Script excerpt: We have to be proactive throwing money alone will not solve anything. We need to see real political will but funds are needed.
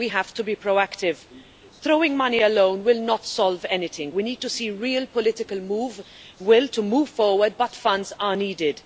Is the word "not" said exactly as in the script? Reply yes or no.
yes